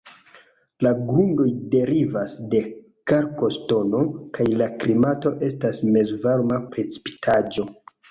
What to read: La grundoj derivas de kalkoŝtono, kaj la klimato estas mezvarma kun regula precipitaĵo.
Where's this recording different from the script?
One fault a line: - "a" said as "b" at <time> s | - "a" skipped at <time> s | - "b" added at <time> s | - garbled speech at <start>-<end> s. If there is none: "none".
- "kun regula" skipped at 6.6 s